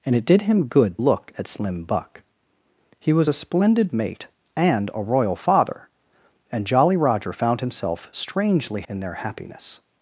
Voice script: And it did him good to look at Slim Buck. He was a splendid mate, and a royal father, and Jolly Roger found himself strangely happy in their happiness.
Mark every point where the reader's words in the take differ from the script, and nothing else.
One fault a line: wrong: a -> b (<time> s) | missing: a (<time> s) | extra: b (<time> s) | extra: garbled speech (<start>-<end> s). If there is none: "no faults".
missing: to (1.0 s)
missing: happy (8.8 s)